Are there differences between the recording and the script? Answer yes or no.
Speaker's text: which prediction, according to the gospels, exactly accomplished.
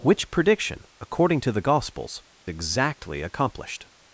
no